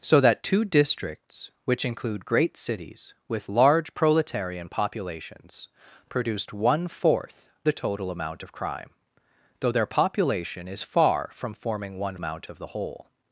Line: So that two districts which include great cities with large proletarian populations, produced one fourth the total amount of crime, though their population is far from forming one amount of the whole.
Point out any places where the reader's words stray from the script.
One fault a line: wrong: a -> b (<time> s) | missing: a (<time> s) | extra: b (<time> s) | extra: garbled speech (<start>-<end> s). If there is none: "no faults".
no faults